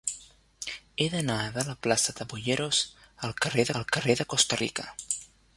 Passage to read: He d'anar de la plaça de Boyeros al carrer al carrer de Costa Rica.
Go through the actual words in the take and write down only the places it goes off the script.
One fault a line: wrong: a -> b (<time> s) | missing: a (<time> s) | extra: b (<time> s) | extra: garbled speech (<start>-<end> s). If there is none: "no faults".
no faults